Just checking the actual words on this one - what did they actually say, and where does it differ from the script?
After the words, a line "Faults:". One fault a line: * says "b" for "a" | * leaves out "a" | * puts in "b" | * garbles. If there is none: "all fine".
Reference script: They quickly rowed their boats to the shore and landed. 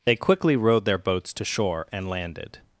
They quickly rowed their boats to shore and landed.
Faults:
* leaves out "the"